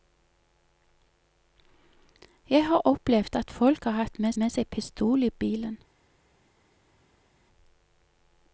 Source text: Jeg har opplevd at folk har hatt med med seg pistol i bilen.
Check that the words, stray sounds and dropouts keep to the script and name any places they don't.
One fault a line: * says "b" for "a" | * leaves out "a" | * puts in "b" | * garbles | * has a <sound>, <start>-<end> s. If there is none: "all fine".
all fine